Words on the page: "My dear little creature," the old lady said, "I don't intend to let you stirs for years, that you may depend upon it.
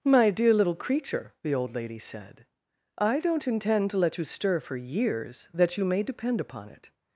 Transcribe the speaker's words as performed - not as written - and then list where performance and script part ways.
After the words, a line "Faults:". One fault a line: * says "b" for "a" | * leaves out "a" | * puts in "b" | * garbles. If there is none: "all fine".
"My dear little creature," the old lady said, "I don't intend to let you stir for years, that you may depend upon it.
Faults:
* says "stir" for "stirs"